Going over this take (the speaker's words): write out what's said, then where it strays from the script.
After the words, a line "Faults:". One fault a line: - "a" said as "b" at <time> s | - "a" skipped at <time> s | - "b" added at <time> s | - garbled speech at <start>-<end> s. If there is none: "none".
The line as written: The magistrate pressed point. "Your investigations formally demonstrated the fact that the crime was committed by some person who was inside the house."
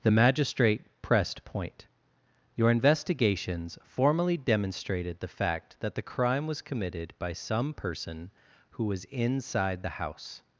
The magistrate pressed point. "Your investigations formally demonstrated the fact that the crime was committed by some person who was inside the house."
Faults:
none